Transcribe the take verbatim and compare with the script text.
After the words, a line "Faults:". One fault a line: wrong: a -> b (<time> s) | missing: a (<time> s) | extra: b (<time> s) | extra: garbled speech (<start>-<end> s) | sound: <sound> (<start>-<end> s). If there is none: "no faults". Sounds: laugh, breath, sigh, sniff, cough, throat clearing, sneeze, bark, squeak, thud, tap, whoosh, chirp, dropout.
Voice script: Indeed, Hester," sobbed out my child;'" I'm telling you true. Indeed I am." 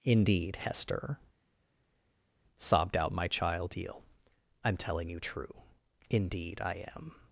Indeed, Hester," sobbed out my child;'" eel I'm telling you true. Indeed I am."
Faults:
extra: eel (3.8 s)